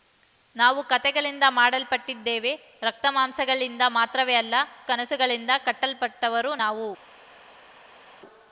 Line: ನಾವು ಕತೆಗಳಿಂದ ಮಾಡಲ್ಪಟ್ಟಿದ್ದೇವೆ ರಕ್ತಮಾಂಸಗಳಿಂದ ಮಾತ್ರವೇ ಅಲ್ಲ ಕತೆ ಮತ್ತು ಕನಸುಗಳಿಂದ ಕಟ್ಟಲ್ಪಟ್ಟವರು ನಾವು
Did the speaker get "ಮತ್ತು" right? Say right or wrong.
wrong